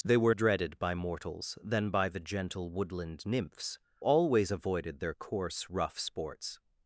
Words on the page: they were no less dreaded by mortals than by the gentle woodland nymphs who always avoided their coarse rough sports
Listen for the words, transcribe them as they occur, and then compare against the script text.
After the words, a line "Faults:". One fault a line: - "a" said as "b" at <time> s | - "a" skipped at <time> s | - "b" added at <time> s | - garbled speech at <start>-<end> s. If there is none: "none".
they were dreaded by mortals than by the gentle woodland nymphs always avoided their coarse rough sports
Faults:
- "no less" skipped at 0.3 s
- "who" skipped at 3.8 s